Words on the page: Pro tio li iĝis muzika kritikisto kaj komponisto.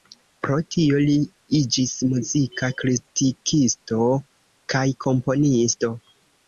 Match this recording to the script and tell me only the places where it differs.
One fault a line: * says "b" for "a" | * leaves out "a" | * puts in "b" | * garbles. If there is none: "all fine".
all fine